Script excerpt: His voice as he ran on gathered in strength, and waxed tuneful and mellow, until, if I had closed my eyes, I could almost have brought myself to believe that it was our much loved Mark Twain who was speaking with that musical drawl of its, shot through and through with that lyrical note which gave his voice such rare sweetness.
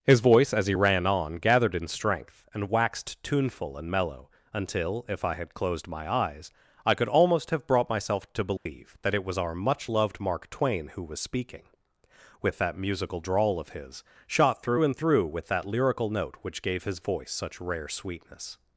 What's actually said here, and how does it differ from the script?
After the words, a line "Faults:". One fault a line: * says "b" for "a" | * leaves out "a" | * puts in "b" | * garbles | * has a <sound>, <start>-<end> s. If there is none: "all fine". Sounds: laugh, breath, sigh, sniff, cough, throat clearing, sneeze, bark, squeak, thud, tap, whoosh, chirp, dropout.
His voice as he ran on gathered in strength, and waxed tuneful and mellow, until, if I had closed my eyes, I could almost have brought myself to believe that it was our much loved Mark Twain who was speaking with that musical drawl of his, shot through and through with that lyrical note which gave his voice such rare sweetness.
Faults:
* has a dropout, 8.6-8.7 s
* says "his" for "its"